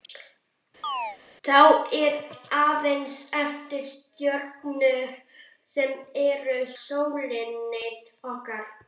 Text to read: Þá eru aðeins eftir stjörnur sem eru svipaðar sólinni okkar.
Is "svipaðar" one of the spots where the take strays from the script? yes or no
yes